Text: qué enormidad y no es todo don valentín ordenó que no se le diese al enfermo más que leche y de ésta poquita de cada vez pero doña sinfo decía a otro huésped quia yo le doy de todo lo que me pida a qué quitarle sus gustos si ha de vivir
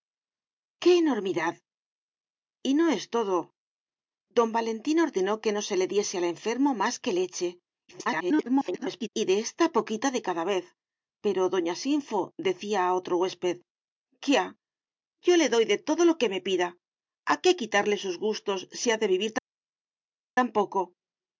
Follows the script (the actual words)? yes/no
no